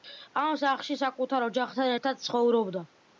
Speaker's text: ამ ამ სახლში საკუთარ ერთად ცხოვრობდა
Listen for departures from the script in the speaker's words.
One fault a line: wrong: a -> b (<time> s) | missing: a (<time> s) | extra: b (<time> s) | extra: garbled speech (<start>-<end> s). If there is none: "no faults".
missing: ამ (0.6 s)
extra: ოჯახთან (1.5 s)